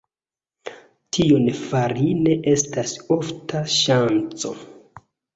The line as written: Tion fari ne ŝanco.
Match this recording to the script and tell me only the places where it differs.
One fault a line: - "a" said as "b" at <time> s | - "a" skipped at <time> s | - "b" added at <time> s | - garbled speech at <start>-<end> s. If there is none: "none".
- "estas ofta" added at 2.5 s